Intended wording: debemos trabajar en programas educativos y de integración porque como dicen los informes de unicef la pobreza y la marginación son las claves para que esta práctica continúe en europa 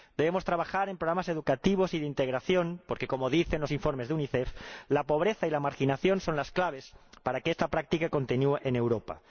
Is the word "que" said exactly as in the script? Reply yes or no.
yes